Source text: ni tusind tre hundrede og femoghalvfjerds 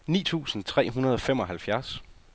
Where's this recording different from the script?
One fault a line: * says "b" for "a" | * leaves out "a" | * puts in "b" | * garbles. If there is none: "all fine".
all fine